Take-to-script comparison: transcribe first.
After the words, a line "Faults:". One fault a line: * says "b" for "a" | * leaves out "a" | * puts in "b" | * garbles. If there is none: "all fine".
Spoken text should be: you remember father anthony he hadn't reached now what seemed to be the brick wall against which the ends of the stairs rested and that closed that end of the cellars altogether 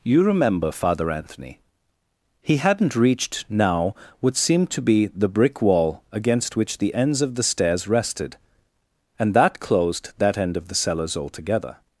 you remember father anthony he hadn't reached now what seemed to be the brick wall against which the ends of the stairs rested and that closed that end of the cellars altogether
Faults:
all fine